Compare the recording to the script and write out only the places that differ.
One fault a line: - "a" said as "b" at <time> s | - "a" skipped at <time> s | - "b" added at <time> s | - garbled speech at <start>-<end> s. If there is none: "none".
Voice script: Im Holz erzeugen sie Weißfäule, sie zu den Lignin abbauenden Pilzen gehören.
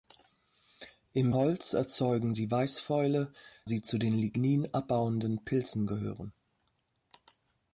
none